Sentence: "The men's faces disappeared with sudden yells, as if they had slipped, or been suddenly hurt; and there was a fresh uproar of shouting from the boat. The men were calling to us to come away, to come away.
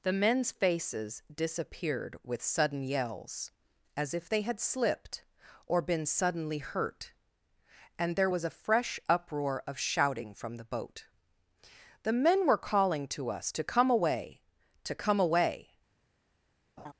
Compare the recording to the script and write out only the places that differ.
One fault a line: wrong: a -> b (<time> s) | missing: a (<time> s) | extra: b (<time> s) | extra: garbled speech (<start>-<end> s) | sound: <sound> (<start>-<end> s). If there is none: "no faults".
sound: laugh (16.8-16.9 s)